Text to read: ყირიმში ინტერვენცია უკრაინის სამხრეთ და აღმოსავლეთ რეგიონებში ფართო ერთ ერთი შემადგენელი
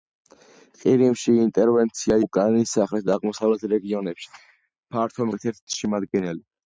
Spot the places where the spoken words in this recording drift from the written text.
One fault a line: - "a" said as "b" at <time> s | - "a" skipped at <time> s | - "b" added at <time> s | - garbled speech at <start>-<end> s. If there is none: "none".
none